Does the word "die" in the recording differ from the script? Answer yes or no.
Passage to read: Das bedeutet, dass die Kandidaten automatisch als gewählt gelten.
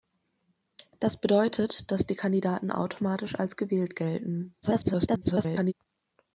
no